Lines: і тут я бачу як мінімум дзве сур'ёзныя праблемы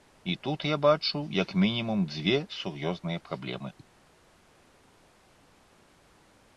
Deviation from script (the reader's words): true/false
false